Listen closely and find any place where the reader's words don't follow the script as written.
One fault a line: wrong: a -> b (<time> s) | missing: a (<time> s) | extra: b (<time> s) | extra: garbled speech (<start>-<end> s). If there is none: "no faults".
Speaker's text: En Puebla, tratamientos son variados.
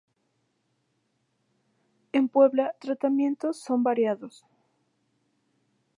no faults